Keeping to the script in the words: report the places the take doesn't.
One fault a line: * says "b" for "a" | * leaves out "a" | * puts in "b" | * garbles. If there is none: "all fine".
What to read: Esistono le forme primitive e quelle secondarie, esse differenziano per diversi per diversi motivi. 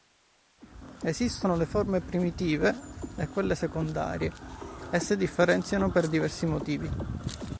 * leaves out "per diversi"